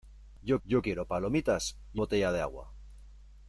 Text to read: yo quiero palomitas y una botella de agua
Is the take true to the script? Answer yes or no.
no